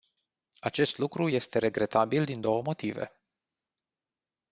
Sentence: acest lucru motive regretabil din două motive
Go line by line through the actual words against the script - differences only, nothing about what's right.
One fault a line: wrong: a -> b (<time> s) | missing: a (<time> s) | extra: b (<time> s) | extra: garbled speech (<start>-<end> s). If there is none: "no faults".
wrong: motive -> este (1.3 s)